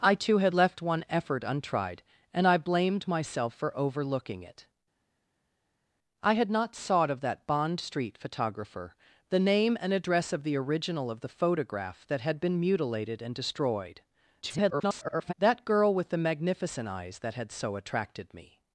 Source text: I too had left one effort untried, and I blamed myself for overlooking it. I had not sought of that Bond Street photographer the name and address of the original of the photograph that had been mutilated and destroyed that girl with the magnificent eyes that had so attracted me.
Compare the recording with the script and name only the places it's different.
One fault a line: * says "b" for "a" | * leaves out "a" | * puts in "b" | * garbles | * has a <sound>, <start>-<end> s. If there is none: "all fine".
* garbles